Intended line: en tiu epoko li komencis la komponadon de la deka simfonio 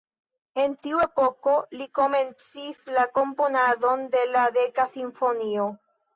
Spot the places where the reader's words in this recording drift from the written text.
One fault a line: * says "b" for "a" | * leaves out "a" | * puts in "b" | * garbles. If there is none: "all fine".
all fine